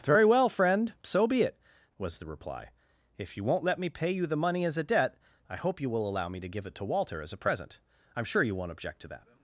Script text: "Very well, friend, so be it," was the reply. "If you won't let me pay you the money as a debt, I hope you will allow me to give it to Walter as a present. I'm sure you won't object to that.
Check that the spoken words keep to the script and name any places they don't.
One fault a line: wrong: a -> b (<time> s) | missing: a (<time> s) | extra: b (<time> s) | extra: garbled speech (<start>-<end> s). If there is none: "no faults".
no faults